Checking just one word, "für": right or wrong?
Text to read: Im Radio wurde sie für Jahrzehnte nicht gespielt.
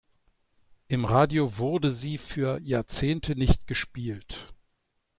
right